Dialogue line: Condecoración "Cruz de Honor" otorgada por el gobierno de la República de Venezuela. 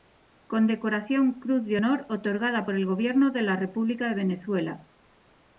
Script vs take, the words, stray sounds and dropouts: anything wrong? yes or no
no